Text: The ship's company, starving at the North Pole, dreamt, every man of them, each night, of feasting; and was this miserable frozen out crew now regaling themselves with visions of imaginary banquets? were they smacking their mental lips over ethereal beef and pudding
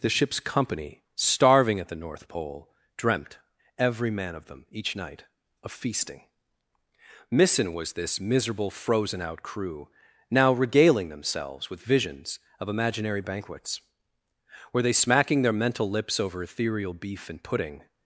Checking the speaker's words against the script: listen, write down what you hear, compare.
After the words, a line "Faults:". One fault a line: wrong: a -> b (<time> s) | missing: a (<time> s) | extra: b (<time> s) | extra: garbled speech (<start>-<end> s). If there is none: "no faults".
The ship's company, starving at the North Pole, dreamt, every man of them, each night, of feasting; missing was this miserable frozen out crew now regaling themselves with visions of imaginary banquets? were they smacking their mental lips over ethereal beef and pudding
Faults:
wrong: and -> missing (7.3 s)